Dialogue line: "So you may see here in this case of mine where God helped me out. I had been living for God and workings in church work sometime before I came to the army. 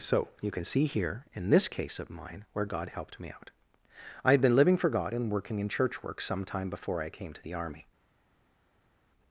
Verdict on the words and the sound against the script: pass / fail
fail